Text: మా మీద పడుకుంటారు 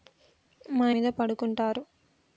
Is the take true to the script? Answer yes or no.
yes